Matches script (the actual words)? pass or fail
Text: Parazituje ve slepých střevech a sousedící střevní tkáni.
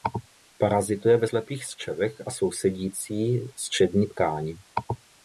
pass